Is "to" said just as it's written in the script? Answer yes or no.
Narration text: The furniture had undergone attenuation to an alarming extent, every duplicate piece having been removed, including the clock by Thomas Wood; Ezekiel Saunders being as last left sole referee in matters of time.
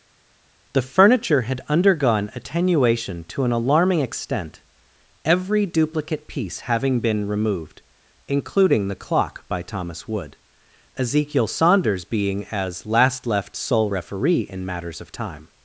yes